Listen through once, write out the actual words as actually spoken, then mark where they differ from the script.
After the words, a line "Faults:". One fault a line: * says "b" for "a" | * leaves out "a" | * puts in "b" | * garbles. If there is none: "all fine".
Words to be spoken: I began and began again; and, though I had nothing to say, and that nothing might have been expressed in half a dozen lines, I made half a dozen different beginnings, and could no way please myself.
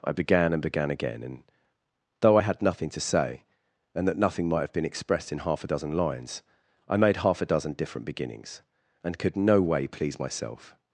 I began and began again; and, though I had nothing to say, and that nothing might have been expressed in half a dozen lines, I made half a dozen different beginnings, and could no way please myself.
Faults:
all fine